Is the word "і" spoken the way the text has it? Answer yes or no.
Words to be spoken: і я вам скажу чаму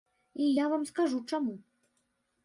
yes